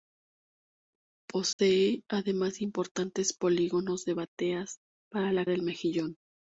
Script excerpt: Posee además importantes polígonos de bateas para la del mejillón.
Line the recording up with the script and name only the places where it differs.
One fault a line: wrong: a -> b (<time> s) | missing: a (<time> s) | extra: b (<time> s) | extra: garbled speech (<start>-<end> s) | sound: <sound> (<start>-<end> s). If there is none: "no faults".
sound: dropout (1.5-1.6 s)